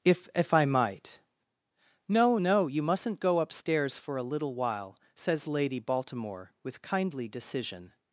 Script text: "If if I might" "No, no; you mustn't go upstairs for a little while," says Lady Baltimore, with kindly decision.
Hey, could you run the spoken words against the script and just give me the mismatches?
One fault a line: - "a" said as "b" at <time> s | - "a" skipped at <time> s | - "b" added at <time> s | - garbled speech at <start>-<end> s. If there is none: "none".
none